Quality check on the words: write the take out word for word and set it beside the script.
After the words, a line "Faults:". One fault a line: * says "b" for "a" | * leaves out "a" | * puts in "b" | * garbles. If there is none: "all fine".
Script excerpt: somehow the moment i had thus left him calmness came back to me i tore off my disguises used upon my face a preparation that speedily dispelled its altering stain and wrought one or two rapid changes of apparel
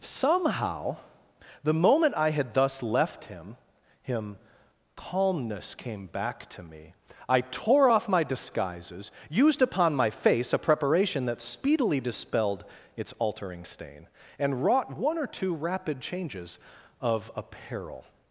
somehow the moment i had thus left him him calmness came back to me i tore off my disguises used upon my face a preparation that speedily dispelled its altering stain and wrought one or two rapid changes of apparel
Faults:
* puts in "him"